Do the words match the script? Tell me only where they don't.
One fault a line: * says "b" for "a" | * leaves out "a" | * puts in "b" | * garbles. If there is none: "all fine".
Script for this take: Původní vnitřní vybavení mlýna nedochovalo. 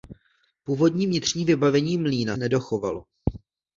all fine